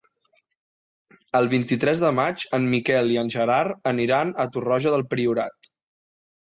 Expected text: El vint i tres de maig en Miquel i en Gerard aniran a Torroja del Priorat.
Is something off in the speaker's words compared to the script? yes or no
no